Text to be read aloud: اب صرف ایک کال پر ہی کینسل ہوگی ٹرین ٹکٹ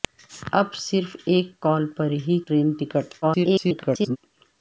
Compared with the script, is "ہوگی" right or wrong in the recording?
wrong